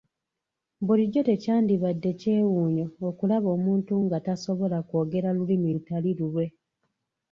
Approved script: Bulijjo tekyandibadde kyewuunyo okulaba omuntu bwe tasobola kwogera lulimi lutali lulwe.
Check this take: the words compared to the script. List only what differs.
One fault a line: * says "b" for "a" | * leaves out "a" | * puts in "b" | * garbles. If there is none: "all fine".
* says "nga" for "bwe"